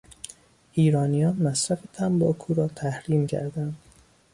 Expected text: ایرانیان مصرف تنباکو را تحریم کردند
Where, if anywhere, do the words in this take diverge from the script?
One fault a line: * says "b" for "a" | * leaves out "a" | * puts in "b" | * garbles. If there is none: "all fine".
all fine